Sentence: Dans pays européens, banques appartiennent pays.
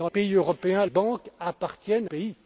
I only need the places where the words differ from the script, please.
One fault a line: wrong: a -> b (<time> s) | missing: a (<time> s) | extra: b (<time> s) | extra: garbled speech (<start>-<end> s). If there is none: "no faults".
no faults